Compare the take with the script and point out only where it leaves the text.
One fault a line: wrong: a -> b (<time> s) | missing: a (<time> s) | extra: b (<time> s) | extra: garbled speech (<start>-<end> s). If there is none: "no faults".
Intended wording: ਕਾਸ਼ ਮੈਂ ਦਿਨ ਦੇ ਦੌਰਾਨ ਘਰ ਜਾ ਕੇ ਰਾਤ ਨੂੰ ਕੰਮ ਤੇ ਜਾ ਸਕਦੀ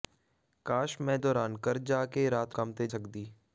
missing: ਦਿਨ ਦੇ (1.2 s)
missing: ਨੂੰ (2.6 s)
missing: ਜਾ (2.9 s)